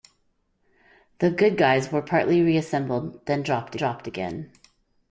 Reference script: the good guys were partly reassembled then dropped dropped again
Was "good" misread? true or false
false